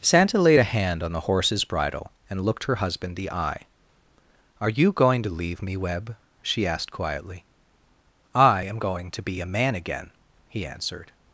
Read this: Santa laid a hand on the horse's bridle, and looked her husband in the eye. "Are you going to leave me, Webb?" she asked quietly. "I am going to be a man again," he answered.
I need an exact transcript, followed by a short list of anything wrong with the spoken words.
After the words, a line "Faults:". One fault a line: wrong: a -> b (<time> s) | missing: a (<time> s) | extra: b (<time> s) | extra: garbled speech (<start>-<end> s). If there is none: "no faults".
Santa laid a hand on the horse's bridle, and looked her husband the eye. "Are you going to leave me, Webb?" she asked quietly. "I am going to be a man again," he answered.
Faults:
missing: in (3.2 s)